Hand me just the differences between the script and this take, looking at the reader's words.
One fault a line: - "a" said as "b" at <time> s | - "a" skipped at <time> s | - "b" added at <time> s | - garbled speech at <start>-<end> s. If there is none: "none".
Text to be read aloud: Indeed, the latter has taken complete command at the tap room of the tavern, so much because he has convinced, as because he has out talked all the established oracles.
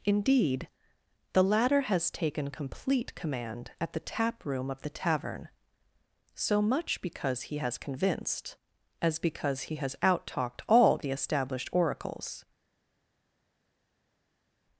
none